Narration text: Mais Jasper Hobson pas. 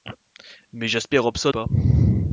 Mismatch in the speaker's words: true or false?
false